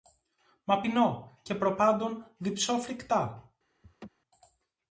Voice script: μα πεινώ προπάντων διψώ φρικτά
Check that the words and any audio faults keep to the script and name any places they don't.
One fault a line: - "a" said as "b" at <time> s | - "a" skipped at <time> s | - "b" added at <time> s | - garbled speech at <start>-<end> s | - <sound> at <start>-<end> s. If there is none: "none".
- "και" added at 1.4 s
- laugh at 3.8-4.1 s